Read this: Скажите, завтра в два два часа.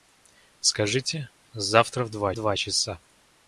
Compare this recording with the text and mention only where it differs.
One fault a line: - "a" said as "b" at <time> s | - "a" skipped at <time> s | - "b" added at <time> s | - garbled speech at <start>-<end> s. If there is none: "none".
none